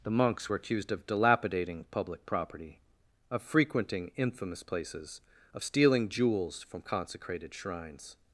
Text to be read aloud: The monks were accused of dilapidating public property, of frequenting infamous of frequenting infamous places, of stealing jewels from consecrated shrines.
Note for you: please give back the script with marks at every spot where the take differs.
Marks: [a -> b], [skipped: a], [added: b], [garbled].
The monks were accused of dilapidating public property, of frequenting infamous [skipped: of frequenting infamous] places, of stealing jewels from consecrated shrines.